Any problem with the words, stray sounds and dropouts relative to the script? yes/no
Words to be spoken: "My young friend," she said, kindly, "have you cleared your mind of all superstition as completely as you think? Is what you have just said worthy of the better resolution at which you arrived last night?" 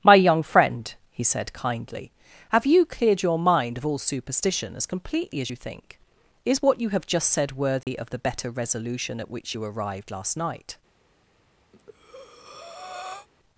yes